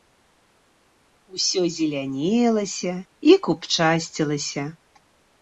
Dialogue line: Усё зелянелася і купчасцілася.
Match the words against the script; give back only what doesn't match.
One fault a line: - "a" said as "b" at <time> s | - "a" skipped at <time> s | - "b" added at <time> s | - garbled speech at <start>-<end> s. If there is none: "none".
none